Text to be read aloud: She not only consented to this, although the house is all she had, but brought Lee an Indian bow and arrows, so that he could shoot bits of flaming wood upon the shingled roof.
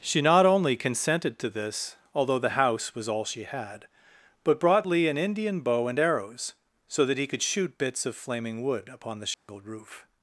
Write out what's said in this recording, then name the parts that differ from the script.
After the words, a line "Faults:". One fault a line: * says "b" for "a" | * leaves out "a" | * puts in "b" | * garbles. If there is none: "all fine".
She not only consented to this, although the house was all she had, but brought Lee an Indian bow and arrows, so that he could shoot bits of flaming wood upon the shingled roof.
Faults:
* says "was" for "is"